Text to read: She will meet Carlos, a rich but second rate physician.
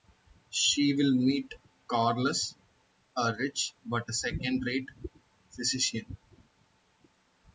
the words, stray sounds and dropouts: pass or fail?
pass